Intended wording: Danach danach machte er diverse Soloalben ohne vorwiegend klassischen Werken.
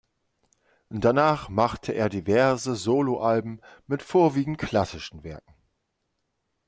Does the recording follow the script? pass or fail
fail